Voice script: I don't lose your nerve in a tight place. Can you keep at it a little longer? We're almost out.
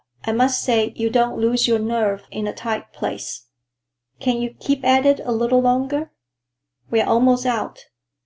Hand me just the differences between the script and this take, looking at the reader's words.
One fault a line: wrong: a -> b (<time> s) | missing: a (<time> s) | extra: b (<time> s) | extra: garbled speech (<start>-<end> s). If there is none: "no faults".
extra: must say you (0.3 s)